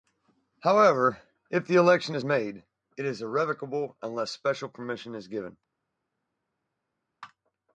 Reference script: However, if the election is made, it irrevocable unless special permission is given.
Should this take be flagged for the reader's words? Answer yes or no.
yes